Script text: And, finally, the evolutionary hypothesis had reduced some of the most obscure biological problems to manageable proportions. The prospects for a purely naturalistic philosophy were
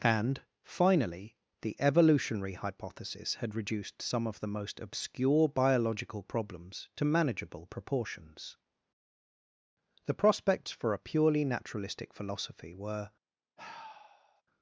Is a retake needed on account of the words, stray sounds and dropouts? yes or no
yes